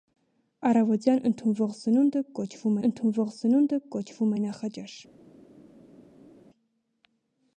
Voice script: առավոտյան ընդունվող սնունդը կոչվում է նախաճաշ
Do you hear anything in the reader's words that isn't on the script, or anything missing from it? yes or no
yes